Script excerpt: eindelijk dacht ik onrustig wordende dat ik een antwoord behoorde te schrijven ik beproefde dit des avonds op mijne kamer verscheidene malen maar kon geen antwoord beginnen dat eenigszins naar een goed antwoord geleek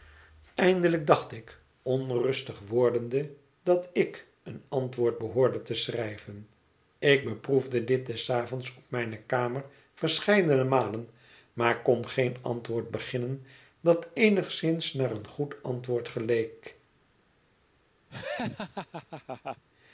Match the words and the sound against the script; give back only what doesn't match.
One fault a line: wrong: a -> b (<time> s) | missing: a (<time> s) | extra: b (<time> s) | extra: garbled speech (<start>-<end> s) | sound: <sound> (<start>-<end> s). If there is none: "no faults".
sound: laugh (18.1-19.6 s)